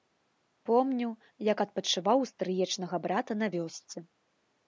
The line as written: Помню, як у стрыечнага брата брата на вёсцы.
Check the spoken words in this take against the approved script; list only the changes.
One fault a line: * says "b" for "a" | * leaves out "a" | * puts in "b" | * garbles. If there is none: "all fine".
* puts in "адпачываў"
* leaves out "брата"